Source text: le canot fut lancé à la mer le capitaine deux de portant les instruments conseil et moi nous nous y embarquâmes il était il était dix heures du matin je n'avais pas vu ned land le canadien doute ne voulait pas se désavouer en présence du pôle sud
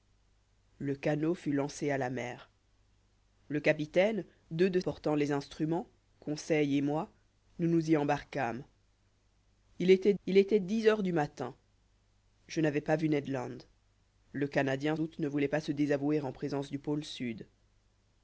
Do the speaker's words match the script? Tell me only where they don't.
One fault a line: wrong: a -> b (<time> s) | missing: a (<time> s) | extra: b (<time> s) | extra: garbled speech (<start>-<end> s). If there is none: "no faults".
no faults